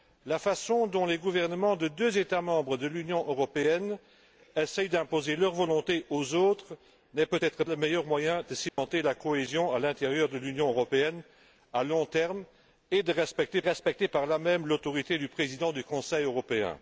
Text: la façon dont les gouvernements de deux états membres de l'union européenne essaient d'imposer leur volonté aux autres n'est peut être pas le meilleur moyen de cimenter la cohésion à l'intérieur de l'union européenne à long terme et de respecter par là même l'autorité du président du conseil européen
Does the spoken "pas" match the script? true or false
false